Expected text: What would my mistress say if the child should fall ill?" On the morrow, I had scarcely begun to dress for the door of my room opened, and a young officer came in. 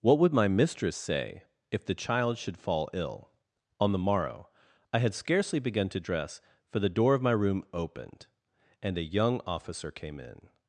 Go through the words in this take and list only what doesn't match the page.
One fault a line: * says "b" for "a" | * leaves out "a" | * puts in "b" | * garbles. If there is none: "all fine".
all fine